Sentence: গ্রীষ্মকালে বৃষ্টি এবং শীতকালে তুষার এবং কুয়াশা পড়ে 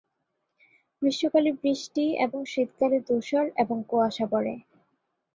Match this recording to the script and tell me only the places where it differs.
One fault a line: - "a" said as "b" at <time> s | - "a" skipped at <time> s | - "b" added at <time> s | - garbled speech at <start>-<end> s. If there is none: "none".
none